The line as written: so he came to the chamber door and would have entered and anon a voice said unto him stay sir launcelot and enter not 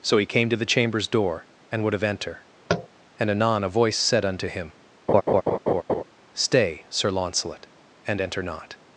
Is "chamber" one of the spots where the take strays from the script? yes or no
yes